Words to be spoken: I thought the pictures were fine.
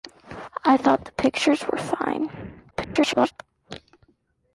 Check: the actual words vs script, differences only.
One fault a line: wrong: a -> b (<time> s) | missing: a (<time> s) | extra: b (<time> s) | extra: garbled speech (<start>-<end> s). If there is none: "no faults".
extra: garbled speech (2.7-3.3 s)